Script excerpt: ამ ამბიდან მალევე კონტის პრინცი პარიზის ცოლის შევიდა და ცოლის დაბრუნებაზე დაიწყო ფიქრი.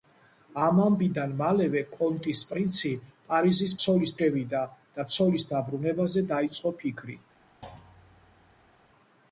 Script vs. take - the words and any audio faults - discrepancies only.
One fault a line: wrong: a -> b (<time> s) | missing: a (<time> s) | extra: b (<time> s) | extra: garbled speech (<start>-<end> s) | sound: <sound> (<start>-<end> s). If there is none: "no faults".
sound: thud (7.6-8.7 s)